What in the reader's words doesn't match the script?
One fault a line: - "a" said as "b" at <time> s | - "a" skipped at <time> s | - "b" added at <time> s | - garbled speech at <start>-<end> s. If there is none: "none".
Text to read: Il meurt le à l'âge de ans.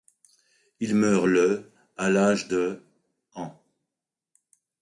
none